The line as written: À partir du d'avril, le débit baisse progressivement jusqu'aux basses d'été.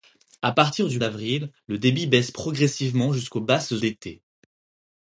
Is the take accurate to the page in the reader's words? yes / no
yes